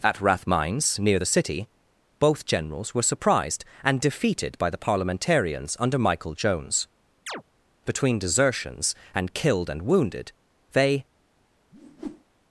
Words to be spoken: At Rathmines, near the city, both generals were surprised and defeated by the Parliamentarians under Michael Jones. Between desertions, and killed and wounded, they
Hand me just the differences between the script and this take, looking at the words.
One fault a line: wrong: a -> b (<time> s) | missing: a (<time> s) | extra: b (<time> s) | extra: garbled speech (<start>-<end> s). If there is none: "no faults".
no faults